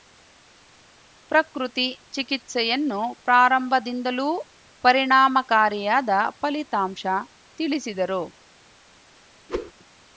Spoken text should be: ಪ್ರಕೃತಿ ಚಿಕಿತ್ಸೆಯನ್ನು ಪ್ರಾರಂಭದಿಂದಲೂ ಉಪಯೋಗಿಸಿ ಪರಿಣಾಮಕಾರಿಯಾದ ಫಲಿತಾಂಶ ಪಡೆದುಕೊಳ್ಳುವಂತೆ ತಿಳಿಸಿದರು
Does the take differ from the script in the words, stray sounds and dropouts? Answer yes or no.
yes